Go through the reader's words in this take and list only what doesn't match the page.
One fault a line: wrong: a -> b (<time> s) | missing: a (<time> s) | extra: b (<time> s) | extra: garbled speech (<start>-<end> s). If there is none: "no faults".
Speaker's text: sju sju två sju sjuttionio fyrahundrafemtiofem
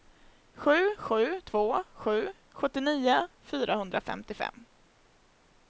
no faults